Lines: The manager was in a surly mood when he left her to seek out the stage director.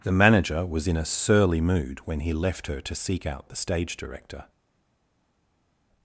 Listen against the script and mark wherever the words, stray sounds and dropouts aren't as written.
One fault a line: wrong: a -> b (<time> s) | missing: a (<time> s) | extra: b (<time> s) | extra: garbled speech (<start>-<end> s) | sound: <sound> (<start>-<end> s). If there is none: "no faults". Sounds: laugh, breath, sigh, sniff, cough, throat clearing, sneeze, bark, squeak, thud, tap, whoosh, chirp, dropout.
no faults